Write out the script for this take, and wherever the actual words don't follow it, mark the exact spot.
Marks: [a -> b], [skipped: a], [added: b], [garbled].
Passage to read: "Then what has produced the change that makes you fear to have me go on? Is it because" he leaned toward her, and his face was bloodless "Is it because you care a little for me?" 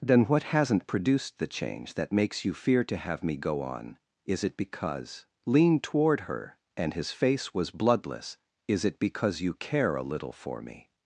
"Then what [has -> hasn't] produced the change that makes you fear to have me go on? Is it because" [skipped: he] leaned toward her, and his face was bloodless "Is it because you care a little for me?"